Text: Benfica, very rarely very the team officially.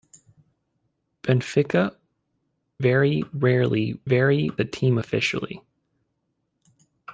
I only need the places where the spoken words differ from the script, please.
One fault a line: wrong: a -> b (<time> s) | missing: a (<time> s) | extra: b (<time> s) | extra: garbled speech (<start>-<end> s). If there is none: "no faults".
no faults